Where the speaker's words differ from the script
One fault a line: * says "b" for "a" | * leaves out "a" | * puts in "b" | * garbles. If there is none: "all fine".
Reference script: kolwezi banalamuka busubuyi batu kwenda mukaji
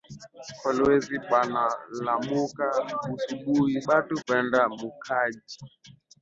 all fine